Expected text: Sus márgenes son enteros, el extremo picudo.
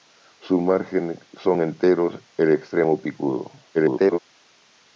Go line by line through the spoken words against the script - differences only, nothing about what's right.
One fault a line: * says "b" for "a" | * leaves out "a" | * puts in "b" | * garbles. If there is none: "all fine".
* garbles